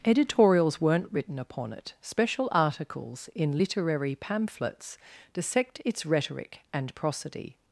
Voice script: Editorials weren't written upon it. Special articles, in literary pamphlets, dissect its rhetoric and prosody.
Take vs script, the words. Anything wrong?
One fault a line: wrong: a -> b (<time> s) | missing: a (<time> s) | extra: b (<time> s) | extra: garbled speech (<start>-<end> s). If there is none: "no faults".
no faults